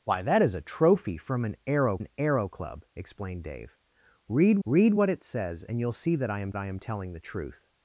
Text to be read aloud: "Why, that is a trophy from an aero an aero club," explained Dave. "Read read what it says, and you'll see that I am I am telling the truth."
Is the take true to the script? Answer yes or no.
yes